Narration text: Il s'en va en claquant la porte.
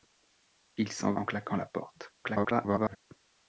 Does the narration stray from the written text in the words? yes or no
yes